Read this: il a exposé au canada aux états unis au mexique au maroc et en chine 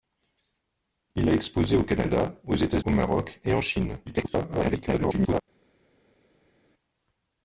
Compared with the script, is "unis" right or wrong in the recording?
wrong